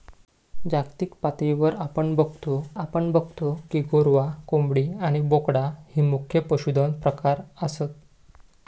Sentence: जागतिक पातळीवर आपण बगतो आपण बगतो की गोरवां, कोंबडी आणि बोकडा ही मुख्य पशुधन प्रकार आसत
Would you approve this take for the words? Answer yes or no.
yes